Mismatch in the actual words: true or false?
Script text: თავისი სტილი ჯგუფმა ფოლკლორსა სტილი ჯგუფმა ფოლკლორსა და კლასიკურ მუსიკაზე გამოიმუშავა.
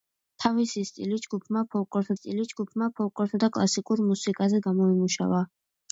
false